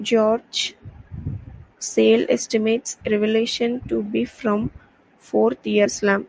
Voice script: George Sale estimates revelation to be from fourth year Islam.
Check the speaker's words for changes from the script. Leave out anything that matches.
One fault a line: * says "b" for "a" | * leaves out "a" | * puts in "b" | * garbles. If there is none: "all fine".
all fine